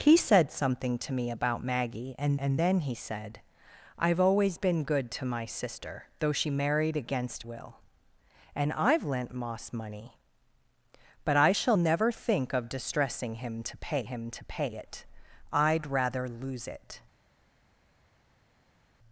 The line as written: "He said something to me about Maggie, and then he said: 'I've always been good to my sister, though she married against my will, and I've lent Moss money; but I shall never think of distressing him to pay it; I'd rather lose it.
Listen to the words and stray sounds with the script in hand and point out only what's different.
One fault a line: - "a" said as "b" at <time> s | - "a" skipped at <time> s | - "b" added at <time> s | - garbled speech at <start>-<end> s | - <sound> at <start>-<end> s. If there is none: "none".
- "and" added at 2.4 s
- "my" skipped at 7.5 s
- "him to pay" added at 14.0 s